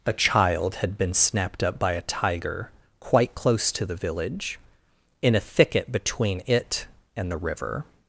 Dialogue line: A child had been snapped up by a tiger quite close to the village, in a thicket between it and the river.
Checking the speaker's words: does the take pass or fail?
pass